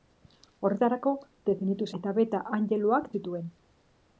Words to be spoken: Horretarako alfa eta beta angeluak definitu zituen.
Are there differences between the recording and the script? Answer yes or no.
yes